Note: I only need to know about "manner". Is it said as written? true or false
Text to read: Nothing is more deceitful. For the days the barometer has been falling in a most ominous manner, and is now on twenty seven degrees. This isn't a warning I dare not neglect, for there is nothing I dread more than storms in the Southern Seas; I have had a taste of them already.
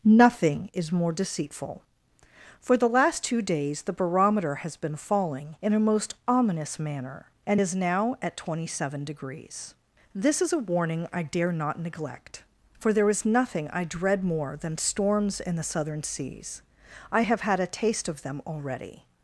true